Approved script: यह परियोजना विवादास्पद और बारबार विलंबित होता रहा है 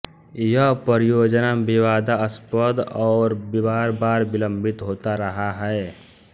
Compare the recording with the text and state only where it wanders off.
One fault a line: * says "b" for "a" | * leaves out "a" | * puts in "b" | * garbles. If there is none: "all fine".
all fine